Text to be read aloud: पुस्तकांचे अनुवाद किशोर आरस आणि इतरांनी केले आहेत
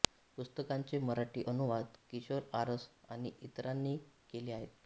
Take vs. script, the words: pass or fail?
fail